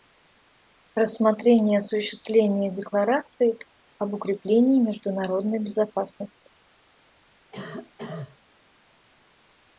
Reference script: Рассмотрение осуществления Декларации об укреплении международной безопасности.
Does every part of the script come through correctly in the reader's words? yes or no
yes